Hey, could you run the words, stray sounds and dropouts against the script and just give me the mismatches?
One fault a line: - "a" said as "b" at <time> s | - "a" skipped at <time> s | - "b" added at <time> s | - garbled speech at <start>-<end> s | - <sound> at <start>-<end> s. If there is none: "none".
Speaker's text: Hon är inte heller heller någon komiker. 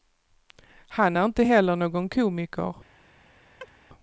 - "Hon" said as "Han" at 0.9 s
- "heller" skipped at 1.8 s
- chirp at 3.6-3.7 s